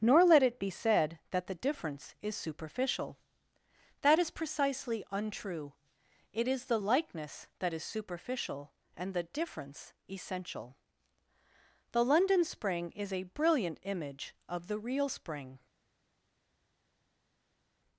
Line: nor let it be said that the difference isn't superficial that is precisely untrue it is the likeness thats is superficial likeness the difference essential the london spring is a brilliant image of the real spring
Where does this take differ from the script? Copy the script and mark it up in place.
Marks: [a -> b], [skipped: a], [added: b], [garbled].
nor let it be said that the difference [isn't -> is] superficial that is precisely untrue it is the likeness [thats -> that] is superficial [likeness -> and] the difference essential the london spring is a brilliant image of the real spring